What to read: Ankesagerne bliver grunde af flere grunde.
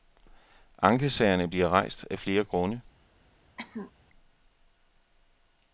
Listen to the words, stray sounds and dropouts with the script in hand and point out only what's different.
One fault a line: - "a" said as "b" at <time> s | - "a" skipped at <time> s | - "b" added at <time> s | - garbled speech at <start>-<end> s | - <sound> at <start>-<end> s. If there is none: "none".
- "grunde" said as "rejst" at 1.7 s
- cough at 3.6-3.9 s